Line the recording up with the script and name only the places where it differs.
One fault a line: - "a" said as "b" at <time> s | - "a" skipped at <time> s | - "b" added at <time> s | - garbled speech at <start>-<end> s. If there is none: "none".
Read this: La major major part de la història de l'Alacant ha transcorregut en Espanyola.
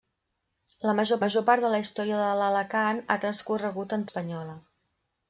none